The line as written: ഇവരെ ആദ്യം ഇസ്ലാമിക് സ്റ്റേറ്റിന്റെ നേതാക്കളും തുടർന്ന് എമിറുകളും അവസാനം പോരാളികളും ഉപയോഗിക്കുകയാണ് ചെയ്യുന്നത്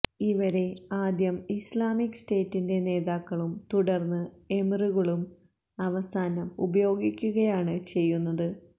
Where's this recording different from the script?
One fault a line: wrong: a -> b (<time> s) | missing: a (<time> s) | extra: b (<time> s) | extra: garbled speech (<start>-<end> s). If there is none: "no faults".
missing: പോരാളികളും (6.5 s)